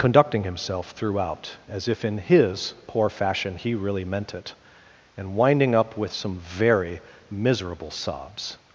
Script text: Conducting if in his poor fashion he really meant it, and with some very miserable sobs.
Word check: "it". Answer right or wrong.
right